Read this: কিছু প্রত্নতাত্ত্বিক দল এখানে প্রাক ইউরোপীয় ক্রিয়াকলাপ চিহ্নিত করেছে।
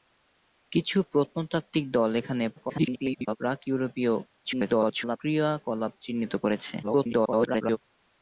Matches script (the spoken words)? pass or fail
fail